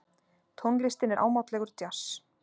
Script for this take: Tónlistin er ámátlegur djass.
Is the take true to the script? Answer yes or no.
yes